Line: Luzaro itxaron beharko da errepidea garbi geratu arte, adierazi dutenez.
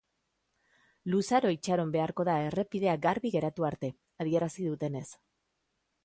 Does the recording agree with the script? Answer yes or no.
yes